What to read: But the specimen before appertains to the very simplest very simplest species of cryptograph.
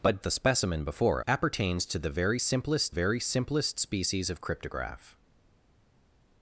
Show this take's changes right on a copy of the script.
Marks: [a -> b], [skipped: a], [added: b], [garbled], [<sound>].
But the specimen before appertains to the very simplest very simplest species of cryptograph.